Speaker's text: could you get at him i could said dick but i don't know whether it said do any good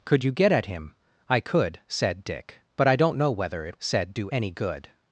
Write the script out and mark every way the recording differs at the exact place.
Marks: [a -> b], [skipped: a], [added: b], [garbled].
could you get at him i could said dick but i don't know whether it said do any good